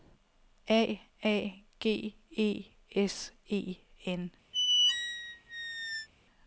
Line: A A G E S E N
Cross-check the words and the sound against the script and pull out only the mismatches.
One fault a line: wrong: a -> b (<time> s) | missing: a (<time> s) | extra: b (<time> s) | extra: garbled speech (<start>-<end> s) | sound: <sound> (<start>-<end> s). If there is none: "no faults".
sound: squeak (4.5-6.1 s)